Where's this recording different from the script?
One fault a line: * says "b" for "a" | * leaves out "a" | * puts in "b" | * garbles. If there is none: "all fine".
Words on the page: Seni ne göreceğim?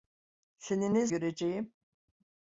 all fine